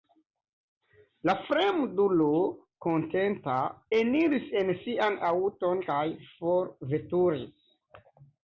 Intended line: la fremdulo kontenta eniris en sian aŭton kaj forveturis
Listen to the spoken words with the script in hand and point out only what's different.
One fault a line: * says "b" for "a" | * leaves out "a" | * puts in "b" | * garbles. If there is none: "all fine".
all fine